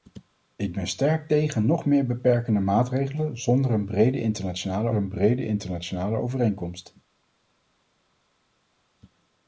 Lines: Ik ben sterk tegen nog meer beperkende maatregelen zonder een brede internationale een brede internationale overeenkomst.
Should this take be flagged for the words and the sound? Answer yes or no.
no